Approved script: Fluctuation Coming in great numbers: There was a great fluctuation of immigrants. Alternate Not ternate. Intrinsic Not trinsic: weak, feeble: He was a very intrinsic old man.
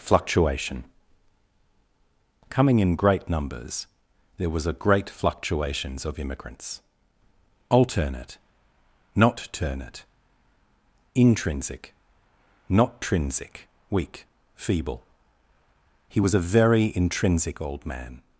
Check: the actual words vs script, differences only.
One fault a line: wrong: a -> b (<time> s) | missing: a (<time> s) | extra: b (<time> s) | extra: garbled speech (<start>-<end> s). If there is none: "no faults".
wrong: fluctuation -> fluctuations (5.1 s)